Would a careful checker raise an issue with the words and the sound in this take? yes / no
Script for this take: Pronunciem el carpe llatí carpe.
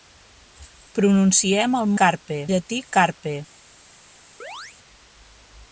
yes